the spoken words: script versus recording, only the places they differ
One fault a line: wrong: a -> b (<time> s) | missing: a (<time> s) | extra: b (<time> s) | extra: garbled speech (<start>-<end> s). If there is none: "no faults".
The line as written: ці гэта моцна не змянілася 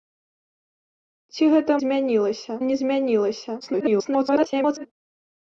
wrong: моцна -> змянілася (1.8 s)
extra: garbled speech (3.6-4.9 s)